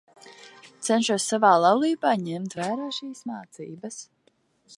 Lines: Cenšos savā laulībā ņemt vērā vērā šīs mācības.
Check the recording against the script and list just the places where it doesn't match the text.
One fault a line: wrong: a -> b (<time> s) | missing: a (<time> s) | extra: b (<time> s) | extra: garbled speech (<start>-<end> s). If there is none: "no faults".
missing: vērā (2.9 s)